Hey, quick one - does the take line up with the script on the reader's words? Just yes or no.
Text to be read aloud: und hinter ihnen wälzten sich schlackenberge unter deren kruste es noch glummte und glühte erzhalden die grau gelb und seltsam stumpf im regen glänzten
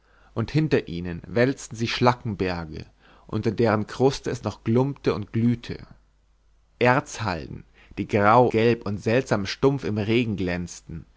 yes